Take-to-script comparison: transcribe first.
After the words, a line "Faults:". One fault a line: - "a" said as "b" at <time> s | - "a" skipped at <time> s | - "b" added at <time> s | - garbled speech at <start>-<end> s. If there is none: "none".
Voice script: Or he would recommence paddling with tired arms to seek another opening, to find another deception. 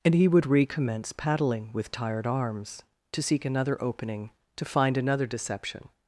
And he would recommence paddling with tired arms to seek another opening, to find another deception.
Faults:
- "Or" said as "And" at 0.0 s